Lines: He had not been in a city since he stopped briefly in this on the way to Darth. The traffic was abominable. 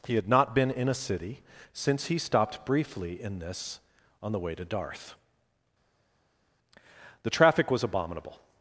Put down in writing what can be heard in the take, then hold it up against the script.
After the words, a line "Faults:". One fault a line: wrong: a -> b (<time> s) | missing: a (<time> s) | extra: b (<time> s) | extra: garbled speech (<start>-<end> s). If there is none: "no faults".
He had not been in a city since he stopped briefly in this on the way to Darth. The traffic was abominable.
Faults:
no faults